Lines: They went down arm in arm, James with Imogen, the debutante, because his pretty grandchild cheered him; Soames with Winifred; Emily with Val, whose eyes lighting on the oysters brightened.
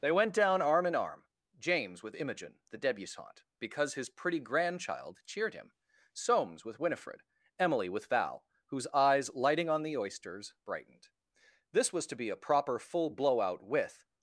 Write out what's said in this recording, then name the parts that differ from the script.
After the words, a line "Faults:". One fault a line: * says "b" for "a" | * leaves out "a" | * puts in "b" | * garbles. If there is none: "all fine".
They went down arm in arm, James with Imogen, the debutante, because his pretty grandchild cheered him; Soames with Winifred; Emily with Val, whose eyes lighting on the oysters brightened. This was to be a proper full "blowout" with
Faults:
* puts in "This was to be a proper full blowout with"